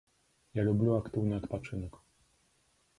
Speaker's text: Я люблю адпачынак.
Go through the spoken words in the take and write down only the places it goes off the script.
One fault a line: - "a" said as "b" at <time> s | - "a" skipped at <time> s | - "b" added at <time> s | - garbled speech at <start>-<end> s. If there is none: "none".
- "актыўны" added at 1.0 s